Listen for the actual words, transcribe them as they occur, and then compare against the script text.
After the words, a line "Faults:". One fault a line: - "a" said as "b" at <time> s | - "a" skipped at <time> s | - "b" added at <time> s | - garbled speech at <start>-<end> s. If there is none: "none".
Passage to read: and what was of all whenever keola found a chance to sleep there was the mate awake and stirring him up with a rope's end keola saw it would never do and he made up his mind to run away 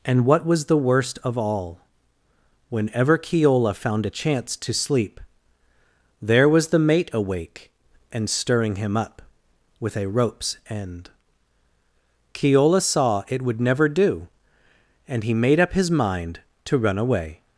and what was the worst of all whenever keola found a chance to sleep there was the mate awake and stirring him up with a rope's end keola saw it would never do and he made up his mind to run away
Faults:
- "the worst" added at 0.7 s